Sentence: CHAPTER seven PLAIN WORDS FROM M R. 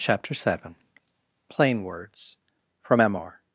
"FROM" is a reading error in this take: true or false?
false